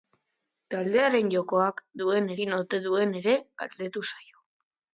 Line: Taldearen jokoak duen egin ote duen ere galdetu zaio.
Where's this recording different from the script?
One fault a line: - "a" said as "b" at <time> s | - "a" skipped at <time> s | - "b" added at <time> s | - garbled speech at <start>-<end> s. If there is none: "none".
none